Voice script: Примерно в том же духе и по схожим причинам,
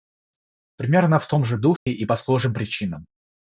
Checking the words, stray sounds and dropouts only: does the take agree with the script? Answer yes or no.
no